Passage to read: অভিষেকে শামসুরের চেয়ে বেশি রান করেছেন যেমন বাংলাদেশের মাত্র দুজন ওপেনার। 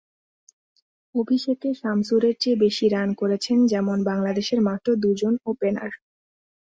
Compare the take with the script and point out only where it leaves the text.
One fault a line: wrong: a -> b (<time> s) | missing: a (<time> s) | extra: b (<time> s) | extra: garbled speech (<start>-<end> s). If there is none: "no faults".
no faults